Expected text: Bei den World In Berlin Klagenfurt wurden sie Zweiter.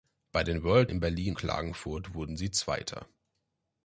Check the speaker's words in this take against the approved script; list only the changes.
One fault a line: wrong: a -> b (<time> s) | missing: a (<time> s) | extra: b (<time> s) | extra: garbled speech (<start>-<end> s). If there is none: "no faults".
no faults